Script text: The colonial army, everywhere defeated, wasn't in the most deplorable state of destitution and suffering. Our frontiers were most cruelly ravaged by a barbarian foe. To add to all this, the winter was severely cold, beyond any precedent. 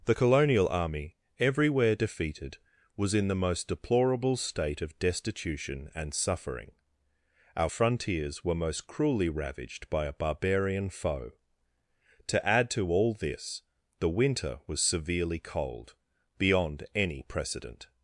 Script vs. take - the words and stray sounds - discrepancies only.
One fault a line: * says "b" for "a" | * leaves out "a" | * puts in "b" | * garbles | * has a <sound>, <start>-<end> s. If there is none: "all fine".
* says "was" for "wasn't"